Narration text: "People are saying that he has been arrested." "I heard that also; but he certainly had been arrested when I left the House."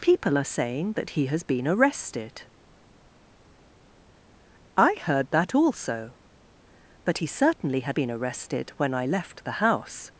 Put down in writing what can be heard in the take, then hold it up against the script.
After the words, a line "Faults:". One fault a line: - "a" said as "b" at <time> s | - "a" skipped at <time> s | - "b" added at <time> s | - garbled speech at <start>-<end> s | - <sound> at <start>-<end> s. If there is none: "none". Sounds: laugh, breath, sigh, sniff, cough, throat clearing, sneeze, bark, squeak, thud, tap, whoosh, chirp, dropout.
"People are saying that he has been arrested." "I heard that also; but he certainly had been arrested when I left the House."
Faults:
none